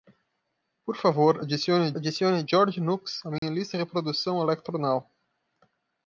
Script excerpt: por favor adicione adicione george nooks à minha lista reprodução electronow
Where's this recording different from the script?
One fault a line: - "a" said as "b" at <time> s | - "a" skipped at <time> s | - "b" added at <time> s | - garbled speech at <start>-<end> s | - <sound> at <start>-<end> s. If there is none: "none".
- dropout at 3.4-3.4 s